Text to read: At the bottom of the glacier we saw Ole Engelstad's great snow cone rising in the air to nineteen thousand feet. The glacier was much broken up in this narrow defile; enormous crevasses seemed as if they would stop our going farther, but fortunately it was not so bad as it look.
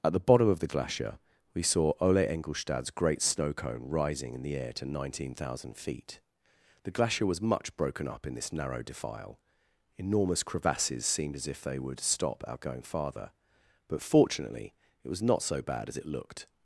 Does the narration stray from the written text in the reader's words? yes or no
yes